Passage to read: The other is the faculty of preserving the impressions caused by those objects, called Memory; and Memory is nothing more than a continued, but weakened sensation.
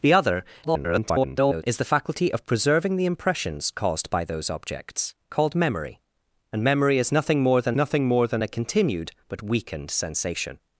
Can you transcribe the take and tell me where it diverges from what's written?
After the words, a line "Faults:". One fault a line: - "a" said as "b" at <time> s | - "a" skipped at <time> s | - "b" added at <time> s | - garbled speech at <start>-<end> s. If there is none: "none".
The other [garbled] is the faculty of preserving the impressions caused by those objects, called Memory; and Memory is nothing more than nothing more than a continued, but weakened sensation.
Faults:
- garbled speech at 0.6-1.6 s
- "nothing more than" added at 7.7 s